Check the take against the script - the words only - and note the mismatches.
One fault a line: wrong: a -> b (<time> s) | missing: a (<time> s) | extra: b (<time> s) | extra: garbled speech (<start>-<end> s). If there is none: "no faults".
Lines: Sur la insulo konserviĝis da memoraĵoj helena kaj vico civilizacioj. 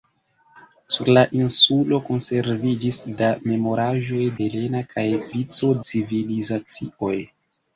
no faults